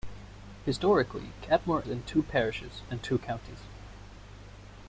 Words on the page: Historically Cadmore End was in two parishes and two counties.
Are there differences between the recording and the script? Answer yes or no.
yes